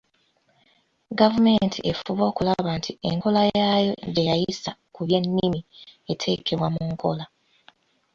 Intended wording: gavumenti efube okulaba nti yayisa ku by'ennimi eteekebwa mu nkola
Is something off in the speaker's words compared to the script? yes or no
yes